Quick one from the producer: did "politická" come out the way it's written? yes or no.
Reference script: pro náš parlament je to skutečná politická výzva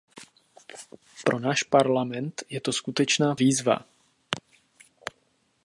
no